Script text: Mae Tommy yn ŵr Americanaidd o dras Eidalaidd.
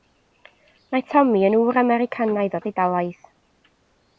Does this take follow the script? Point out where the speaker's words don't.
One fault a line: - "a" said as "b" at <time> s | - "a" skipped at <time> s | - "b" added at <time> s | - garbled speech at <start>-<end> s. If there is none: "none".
- "dras" skipped at 2.6 s